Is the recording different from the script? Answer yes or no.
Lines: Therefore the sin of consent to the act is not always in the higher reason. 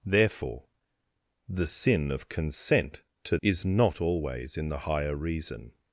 yes